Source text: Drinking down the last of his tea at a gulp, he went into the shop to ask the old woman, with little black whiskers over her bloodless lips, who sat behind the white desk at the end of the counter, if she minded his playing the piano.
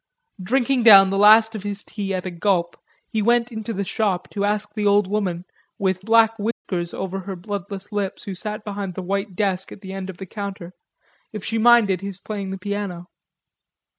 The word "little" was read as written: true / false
false